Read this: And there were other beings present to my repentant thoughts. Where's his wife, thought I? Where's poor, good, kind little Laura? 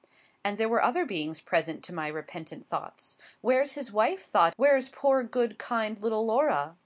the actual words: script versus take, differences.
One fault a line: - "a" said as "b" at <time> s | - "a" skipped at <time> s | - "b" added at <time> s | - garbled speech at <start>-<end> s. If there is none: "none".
- "I" skipped at 4.5 s